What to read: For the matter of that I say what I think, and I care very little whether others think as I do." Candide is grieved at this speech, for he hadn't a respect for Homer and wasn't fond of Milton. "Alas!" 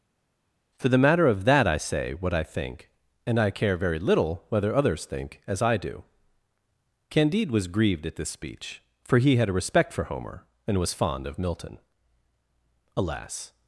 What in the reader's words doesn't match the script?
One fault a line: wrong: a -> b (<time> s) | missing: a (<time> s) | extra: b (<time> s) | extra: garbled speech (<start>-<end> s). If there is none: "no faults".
wrong: is -> was (7.5 s)
wrong: hadn't -> had (9.4 s)
wrong: wasn't -> was (10.8 s)